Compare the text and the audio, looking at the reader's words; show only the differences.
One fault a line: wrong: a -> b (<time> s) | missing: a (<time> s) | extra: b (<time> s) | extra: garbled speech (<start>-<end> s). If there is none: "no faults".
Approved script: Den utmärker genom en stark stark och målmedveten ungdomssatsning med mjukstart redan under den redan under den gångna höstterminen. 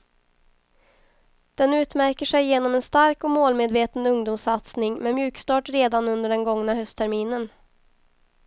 extra: sig (2.2 s)
missing: stark (3.2 s)
missing: redan under den (6.4 s)